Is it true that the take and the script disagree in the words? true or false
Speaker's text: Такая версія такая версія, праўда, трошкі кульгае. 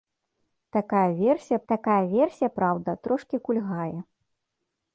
false